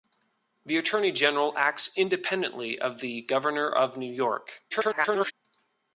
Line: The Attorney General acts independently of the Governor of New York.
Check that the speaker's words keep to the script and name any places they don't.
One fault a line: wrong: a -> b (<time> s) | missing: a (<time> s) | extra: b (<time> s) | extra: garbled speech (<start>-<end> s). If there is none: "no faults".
extra: garbled speech (4.7-5.3 s)